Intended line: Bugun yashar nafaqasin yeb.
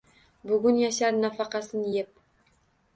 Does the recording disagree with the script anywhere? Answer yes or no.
no